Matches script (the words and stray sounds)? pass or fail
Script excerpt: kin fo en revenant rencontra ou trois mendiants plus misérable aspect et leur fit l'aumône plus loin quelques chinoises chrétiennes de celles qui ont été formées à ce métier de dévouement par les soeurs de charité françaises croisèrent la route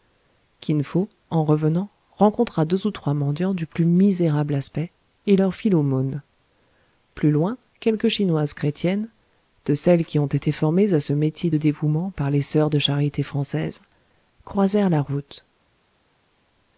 fail